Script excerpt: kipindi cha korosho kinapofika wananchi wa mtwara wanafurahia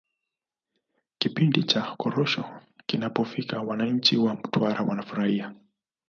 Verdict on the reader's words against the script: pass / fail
pass